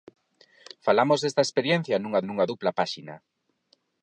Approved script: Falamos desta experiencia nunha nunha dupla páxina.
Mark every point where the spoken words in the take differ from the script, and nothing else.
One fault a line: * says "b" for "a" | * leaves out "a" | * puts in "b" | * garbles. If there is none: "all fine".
all fine